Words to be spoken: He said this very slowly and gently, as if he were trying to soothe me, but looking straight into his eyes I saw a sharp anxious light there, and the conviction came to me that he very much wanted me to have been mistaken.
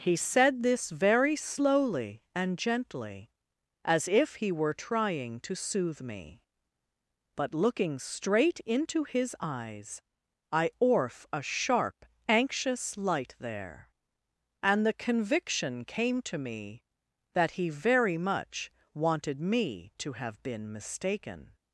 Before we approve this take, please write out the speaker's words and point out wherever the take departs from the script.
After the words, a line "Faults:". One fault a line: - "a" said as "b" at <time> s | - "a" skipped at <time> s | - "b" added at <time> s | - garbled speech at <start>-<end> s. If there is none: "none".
He said this very slowly and gently, as if he were trying to soothe me, but looking straight into his eyes I orf a sharp anxious light there, and the conviction came to me that he very much wanted me to have been mistaken.
Faults:
- "saw" said as "orf" at 10.8 s